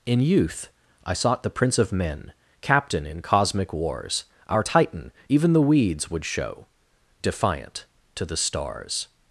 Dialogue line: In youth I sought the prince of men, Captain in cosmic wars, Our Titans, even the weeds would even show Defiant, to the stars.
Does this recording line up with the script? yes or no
no